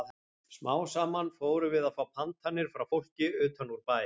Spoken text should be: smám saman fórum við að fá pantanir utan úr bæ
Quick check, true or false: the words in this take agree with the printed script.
false